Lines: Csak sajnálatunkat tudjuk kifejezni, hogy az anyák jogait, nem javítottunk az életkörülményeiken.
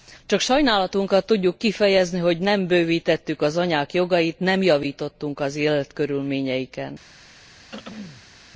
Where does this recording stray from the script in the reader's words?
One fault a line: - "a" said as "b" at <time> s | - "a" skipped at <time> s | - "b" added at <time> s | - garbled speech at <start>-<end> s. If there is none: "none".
- "nem bővítettük" added at 2.4 s